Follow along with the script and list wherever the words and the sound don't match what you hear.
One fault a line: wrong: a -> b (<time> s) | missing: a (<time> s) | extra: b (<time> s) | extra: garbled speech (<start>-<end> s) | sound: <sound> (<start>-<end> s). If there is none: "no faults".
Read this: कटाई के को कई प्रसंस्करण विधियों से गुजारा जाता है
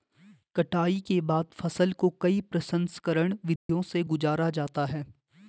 extra: बाद फसल (1.2 s)
sound: dropout (3.6-3.7 s)